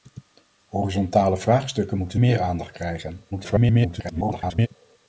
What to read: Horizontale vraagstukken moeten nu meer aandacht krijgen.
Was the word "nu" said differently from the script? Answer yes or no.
yes